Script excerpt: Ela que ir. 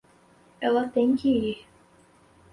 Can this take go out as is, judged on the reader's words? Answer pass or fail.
fail